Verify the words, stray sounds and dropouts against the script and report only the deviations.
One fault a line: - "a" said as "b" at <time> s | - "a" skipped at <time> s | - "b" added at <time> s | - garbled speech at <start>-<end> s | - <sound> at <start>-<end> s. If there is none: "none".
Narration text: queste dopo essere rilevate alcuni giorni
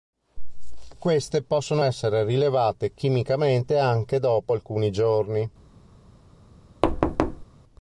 - "dopo" said as "possono" at 1.4 s
- "chimicamente anche dopo" added at 2.9 s
- thud at 6.8-7.5 s